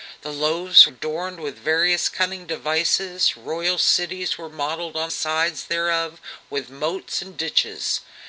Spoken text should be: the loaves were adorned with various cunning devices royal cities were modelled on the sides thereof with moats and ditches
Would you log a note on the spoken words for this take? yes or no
yes